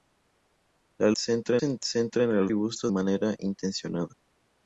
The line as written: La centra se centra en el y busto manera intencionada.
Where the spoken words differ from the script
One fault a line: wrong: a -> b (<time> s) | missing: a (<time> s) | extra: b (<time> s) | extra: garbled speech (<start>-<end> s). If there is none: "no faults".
no faults